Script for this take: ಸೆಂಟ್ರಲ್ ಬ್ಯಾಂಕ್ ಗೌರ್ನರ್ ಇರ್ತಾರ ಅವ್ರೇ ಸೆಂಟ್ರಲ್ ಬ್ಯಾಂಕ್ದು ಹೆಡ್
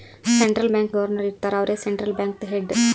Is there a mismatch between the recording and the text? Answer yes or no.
no